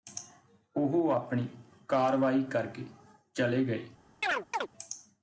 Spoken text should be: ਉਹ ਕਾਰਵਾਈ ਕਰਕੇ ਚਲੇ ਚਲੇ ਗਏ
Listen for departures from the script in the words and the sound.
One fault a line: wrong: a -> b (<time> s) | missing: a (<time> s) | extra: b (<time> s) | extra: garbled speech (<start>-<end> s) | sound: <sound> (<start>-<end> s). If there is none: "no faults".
extra: ਆਪਣੀ (1.1 s)
missing: ਚਲੇ (3.6 s)
sound: chirp (4.2-4.7 s)